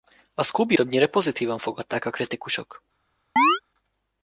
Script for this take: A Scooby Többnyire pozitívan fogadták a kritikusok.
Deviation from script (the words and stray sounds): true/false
true